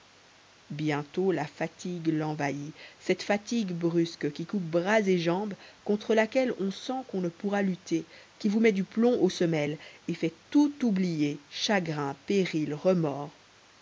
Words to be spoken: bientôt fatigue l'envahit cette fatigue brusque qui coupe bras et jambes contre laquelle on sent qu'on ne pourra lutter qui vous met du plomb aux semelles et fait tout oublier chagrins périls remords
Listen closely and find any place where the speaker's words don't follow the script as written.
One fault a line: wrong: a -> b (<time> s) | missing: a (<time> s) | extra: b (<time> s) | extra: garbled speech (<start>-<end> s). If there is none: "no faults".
extra: la (1.3 s)